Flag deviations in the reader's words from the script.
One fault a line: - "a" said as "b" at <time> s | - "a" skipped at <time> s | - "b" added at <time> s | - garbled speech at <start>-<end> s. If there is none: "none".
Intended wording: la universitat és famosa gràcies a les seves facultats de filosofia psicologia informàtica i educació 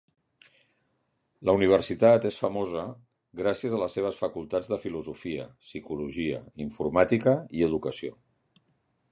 none